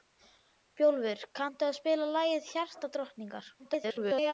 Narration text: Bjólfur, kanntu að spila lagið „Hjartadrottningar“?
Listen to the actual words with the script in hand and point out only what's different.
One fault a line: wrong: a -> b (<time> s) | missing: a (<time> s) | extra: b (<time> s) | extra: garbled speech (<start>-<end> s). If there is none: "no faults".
extra: garbled speech (3.6-4.3 s)